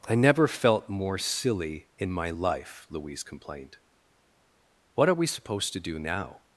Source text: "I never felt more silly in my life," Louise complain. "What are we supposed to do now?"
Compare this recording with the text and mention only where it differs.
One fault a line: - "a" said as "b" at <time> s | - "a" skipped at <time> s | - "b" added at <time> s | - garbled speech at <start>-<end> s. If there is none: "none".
- "complain" said as "complained" at 3.2 s